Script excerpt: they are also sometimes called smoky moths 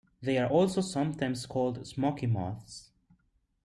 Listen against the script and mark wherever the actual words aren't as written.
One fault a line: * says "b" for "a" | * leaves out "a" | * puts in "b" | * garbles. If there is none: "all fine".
all fine